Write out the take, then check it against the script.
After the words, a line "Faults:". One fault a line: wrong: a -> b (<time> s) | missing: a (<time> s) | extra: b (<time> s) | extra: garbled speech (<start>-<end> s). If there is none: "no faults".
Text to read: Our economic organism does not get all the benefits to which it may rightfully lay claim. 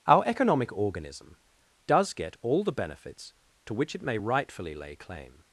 Our economic organism does get all the benefits to which it may rightfully lay claim.
Faults:
missing: not (2.1 s)